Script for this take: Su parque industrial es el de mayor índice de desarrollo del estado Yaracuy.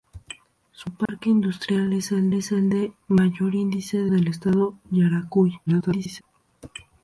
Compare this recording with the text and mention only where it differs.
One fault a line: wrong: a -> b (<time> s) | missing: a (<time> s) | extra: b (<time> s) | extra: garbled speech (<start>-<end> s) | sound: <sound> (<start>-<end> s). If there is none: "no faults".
sound: dropout (1.1-1.1 s)
extra: es el (2.3 s)
missing: desarrollo (4.1 s)
extra: garbled speech (5.7-6.2 s)